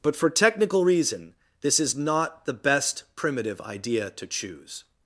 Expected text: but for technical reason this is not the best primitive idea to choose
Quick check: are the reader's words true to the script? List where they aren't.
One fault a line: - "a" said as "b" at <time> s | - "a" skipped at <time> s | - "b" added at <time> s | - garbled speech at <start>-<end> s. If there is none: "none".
none